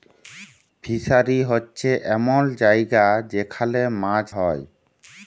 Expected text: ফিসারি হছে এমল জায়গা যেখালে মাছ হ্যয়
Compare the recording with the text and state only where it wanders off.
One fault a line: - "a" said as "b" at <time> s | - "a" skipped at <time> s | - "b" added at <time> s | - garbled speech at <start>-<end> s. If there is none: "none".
none